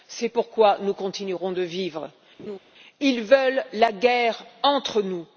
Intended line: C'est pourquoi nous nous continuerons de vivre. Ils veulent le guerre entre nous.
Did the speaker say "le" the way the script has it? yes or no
no